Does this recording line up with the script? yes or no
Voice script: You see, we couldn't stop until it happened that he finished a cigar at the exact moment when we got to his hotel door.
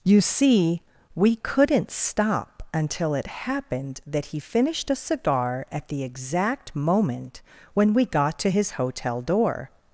yes